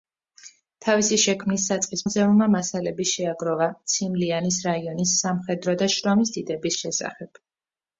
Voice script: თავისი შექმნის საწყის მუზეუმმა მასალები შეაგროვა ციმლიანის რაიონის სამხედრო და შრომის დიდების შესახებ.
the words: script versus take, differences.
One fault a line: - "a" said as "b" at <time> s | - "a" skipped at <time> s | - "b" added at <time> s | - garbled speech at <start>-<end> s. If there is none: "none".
none